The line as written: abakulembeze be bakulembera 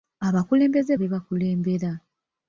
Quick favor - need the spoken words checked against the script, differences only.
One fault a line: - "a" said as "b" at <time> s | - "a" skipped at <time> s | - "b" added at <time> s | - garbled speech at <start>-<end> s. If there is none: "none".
none